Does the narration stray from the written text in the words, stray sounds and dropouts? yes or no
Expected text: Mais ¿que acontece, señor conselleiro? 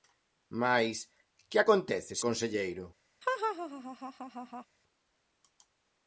yes